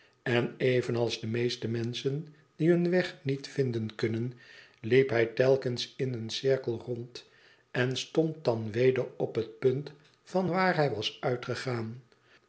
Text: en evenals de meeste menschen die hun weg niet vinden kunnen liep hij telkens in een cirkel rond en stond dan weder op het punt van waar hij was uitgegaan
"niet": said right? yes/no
yes